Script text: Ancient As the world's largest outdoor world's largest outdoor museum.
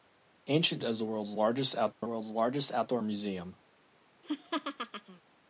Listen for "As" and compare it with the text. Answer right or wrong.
right